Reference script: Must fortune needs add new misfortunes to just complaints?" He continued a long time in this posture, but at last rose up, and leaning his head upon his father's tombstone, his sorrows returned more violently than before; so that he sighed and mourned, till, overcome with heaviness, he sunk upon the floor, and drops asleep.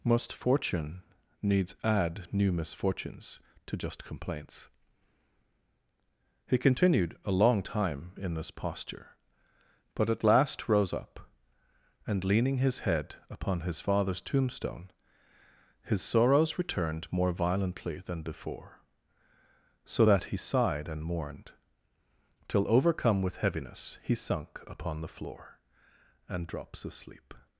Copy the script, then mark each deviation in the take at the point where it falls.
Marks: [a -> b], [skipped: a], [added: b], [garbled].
Must fortune needs add new misfortunes to just complaints?" He continued a long time in this posture, but at last rose up, and leaning his head upon his father's tombstone, his sorrows returned more violently than before; so that he sighed and mourned, till, overcome with heaviness, he sunk upon the floor, and drops asleep.